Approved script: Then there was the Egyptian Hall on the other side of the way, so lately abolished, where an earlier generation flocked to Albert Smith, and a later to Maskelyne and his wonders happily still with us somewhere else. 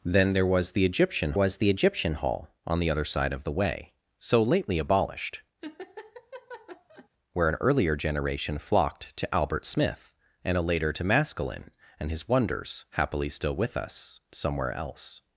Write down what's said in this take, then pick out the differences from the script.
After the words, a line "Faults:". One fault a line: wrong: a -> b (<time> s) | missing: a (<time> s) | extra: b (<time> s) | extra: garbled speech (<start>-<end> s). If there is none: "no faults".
Then there was the Egyptian was the Egyptian Hall on the other side of the way, so lately abolished, where an earlier generation flocked to Albert Smith, and a later to Maskelyne and his wonders happily still with us somewhere else.
Faults:
extra: was the Egyptian (1.3 s)